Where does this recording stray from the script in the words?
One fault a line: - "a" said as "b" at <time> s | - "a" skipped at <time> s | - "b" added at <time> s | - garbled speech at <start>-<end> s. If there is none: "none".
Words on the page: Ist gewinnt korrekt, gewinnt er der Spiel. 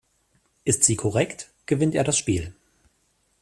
- "gewinnt" said as "sie" at 0.8 s
- "der" said as "das" at 2.0 s